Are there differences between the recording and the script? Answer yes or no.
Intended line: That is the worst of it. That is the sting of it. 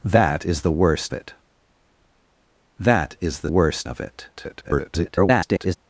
yes